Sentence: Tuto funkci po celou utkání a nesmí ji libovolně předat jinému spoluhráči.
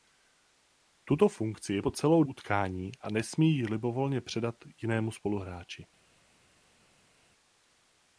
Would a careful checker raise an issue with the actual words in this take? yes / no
no